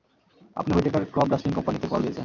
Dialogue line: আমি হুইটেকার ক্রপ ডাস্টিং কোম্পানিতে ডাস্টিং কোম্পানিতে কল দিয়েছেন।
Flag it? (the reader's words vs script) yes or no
yes